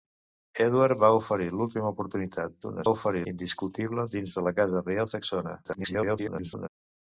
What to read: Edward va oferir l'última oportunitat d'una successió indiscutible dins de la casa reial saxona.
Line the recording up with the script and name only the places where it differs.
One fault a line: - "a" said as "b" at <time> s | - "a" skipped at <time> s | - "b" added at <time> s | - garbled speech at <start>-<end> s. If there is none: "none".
- "successió" said as "oferir" at 2.9 s
- garbled speech at 5.6-6.7 s